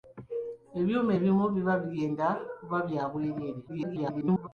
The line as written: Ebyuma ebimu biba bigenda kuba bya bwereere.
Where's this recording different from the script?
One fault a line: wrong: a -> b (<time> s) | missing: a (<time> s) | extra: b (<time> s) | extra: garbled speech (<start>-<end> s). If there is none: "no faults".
extra: garbled speech (3.7-4.5 s)